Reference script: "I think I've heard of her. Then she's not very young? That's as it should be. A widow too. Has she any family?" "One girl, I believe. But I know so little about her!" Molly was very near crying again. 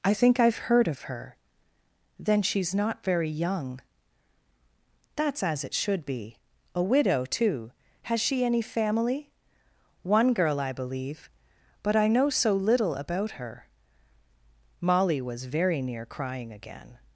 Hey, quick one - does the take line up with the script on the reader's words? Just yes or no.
yes